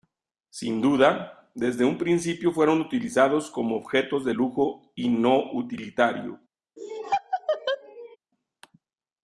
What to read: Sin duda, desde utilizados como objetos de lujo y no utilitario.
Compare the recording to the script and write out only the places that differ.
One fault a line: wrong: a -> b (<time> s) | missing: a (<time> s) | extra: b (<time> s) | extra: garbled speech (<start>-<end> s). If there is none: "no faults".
extra: un principio fueron (1.9 s)